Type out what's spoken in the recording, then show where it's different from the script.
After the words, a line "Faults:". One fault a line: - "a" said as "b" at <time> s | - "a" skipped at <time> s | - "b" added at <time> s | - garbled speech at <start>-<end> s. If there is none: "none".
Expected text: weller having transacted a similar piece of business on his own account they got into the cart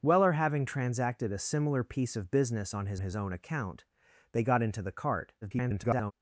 weller having transacted a similar piece of business on his his own account they got into the cart [garbled]
Faults:
- "his" added at 3.0 s
- garbled speech at 5.4-6.1 s